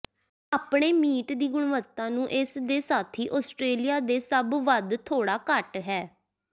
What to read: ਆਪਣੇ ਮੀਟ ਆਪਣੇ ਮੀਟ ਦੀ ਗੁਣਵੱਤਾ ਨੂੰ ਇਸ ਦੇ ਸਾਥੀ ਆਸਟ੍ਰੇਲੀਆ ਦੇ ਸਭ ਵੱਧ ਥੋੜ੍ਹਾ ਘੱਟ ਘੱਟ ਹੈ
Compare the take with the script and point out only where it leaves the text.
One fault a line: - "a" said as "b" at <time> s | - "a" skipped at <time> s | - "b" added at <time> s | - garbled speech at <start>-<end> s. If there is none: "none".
- "ਆਪਣੇ ਮੀਟ" skipped at 1.3 s
- "ਘੱਟ" skipped at 5.8 s